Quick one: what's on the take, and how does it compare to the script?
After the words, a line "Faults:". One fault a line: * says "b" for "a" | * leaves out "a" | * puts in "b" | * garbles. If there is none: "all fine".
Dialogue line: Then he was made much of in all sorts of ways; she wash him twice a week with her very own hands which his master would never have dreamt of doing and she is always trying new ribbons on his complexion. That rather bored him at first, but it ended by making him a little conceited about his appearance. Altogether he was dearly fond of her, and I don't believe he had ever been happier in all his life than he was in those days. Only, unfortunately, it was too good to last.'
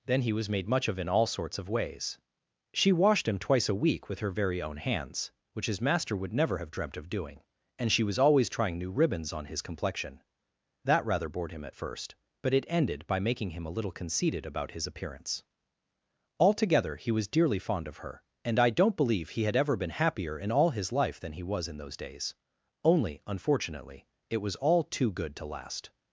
Then he was made much of in all sorts of ways; she washed him twice a week with her very own hands which his master would never have dreamt of doing and she was always trying new ribbons on his complexion. That rather bored him at first, but it ended by making him a little conceited about his appearance. Altogether he was dearly fond of her, and I don't believe he had ever been happier in all his life than he was in those days. Only, unfortunately, it was all too good to last.'
Faults:
* says "washed" for "wash"
* says "was" for "is"
* puts in "all"